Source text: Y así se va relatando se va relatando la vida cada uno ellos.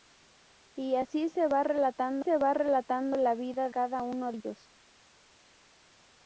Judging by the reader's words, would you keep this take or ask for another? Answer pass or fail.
pass